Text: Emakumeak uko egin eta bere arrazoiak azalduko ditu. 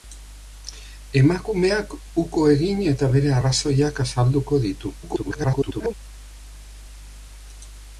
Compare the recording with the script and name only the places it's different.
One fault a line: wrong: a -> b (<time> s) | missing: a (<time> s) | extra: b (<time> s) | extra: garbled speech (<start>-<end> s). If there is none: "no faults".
extra: garbled speech (5.0-5.9 s)